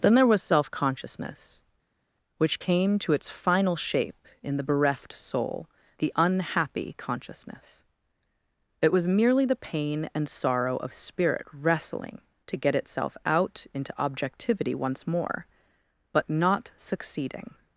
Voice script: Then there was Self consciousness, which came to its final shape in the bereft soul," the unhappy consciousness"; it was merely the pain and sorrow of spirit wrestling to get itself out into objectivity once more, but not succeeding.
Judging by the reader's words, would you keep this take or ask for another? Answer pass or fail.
pass